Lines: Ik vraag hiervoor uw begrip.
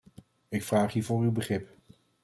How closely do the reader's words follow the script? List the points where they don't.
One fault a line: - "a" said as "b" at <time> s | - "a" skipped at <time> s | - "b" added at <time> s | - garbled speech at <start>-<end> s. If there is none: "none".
none